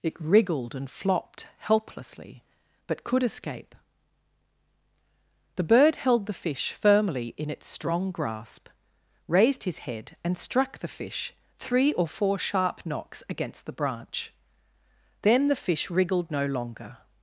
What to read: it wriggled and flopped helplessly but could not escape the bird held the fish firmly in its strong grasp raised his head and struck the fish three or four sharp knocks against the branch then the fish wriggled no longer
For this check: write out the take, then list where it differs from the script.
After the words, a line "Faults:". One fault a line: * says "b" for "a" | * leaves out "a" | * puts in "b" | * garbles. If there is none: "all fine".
it wriggled and flopped helplessly but could escape the bird held the fish firmly in its strong grasp raised his head and struck the fish three or four sharp knocks against the branch then the fish wriggled no longer
Faults:
* leaves out "not"